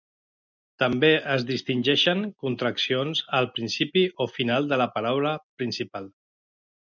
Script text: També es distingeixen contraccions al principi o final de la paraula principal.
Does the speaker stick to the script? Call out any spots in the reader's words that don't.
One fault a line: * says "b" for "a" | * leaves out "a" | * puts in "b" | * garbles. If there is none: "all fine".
all fine